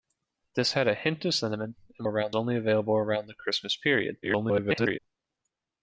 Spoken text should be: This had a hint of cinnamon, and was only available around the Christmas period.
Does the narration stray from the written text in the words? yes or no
yes